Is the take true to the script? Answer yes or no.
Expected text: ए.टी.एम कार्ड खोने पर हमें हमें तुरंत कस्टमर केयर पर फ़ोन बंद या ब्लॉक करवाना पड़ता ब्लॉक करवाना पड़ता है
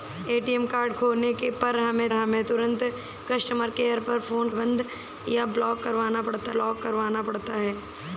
yes